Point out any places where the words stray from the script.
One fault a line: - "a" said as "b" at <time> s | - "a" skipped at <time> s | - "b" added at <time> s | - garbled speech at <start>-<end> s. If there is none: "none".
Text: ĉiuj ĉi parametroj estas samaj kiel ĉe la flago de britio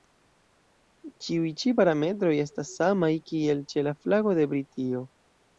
none